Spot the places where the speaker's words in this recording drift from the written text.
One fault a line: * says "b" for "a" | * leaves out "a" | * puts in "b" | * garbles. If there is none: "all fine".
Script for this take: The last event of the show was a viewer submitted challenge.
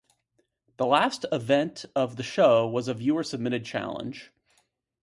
all fine